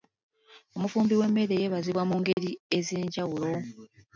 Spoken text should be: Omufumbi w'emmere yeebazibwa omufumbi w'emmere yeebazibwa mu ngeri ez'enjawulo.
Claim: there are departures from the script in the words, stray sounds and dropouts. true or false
true